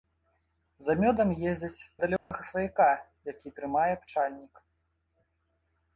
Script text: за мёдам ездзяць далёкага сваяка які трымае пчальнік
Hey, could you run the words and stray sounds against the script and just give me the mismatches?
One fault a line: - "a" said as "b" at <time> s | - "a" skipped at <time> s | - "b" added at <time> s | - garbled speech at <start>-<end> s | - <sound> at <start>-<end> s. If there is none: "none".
- dropout at 2.2-2.3 s